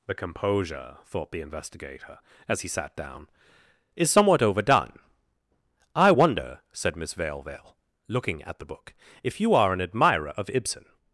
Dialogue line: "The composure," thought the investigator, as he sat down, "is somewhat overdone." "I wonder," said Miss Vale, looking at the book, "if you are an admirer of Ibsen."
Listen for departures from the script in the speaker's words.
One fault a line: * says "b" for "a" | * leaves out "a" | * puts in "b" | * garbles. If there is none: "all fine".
* puts in "Vale"